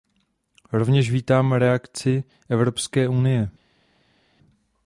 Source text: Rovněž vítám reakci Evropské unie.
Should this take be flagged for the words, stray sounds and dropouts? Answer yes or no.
no